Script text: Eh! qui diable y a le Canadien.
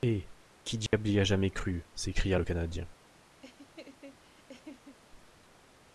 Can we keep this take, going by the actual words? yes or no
no